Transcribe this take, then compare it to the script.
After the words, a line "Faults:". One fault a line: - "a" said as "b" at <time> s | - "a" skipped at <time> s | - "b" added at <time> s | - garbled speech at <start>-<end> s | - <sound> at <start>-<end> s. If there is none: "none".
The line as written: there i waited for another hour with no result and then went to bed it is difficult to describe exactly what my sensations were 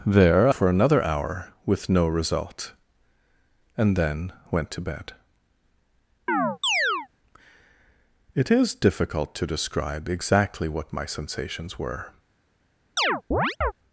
there for another hour with no result and then went to bed it is difficult to describe exactly what my sensations were
Faults:
- "i waited" skipped at 0.5 s
- chirp at 6.3-7.1 s
- chirp at 13.0-13.7 s